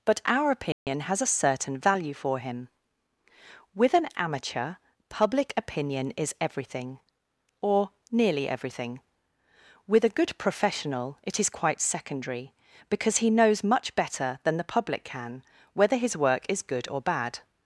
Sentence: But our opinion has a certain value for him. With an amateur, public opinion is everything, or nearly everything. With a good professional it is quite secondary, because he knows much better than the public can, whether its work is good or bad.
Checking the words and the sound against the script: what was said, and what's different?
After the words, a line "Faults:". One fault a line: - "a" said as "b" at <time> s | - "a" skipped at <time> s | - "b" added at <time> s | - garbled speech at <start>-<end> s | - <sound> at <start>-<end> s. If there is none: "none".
But our opinion has a certain value for him. With an amateur, public opinion is everything, or nearly everything. With a good professional it is quite secondary, because he knows much better than the public can, whether his work is good or bad.
Faults:
- dropout at 0.7-0.9 s
- "its" said as "his" at 16.0 s